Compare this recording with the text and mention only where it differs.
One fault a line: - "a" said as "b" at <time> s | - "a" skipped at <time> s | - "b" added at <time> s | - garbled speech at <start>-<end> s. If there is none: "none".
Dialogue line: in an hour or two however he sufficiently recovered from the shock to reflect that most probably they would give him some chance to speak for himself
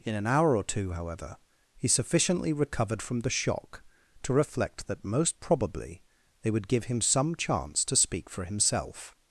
none